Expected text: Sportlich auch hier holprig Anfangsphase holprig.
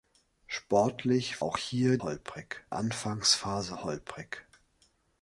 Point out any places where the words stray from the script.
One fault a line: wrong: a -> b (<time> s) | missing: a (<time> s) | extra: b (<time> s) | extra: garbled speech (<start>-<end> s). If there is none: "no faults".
no faults